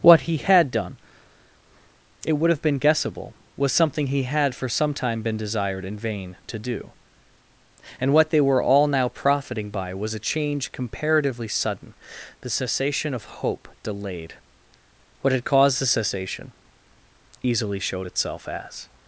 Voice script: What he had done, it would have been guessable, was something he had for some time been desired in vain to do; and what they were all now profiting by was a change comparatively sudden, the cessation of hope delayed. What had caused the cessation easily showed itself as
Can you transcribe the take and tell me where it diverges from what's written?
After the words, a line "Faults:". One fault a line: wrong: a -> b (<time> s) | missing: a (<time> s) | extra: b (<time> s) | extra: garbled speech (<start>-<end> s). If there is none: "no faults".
What he had done, it would have been guessable, was something he had for some time been desired in vain to do; and what they were all now profiting by was a change comparatively sudden, the cessation of hope delayed. What had caused the cessation easily showed itself as
Faults:
no faults